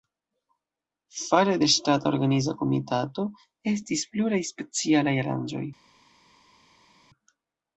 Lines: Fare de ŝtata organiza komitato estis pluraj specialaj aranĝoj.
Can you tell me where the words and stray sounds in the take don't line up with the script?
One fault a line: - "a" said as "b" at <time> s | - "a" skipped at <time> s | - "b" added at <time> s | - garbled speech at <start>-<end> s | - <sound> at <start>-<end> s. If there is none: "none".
none